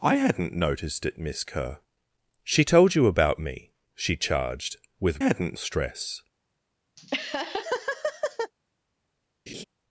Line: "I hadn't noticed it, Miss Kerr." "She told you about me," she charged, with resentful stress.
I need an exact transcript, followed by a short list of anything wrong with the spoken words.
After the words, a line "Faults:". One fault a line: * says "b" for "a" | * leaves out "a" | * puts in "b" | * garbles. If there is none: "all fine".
"I hadn't noticed it, Miss Kerr." "She told you about me," she charged, with hadn't stress.
Faults:
* says "hadn't" for "resentful"